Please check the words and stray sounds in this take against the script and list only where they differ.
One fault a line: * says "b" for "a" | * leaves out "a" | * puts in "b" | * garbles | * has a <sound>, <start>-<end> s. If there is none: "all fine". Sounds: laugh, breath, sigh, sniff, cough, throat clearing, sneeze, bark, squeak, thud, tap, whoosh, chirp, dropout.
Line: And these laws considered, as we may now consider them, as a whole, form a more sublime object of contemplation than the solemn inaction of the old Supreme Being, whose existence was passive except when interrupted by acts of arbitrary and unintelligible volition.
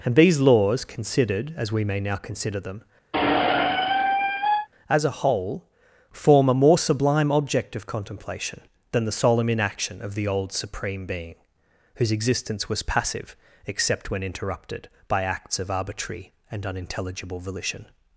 * has a squeak, 3.1-4.7 s